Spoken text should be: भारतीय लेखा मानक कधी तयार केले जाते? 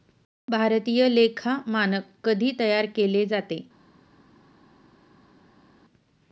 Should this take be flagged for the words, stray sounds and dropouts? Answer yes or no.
no